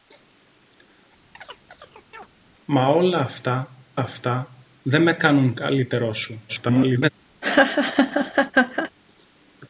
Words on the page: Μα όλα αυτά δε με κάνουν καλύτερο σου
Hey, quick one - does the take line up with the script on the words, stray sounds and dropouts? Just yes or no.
no